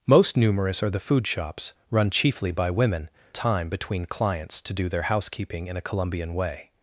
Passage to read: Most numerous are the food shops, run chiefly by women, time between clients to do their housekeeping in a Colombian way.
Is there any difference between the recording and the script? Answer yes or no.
no